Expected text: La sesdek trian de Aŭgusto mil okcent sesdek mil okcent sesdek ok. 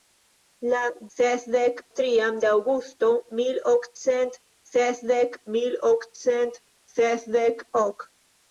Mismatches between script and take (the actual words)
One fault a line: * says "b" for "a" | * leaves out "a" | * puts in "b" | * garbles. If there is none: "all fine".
all fine